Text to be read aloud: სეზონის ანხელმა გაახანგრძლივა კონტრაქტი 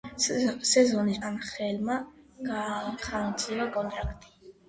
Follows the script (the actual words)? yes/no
yes